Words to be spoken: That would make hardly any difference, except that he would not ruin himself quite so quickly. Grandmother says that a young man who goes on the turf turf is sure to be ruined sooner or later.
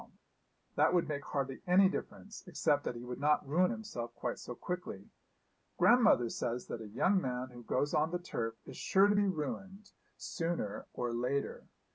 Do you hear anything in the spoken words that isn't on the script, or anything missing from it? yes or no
yes